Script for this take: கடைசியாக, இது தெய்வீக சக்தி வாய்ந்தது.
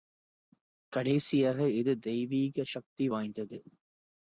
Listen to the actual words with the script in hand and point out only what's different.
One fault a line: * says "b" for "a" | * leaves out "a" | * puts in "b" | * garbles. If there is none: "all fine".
all fine